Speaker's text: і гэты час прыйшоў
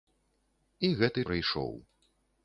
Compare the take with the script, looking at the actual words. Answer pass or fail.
fail